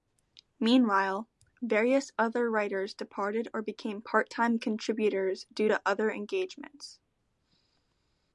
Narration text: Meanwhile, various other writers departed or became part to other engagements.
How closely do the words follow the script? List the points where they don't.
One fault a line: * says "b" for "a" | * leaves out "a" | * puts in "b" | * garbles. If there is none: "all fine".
* puts in "time contributors due"